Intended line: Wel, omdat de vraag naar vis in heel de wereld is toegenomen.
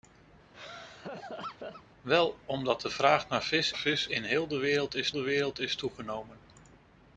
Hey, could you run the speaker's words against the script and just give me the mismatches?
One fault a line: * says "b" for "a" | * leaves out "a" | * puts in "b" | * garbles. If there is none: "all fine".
* puts in "vis"
* puts in "de wereld is"